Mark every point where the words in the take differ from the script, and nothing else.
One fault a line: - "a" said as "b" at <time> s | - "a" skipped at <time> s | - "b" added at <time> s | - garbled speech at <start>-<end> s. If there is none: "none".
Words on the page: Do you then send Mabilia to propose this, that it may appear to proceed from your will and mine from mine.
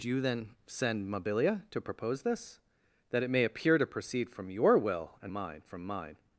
none